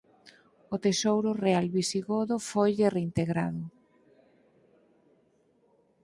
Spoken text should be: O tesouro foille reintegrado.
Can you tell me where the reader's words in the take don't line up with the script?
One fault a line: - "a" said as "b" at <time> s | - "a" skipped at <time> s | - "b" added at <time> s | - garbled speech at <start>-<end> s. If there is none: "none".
- "real visigodo" added at 1.4 s